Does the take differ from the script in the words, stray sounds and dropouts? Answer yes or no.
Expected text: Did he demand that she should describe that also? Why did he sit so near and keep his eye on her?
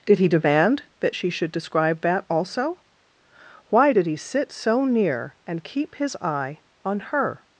no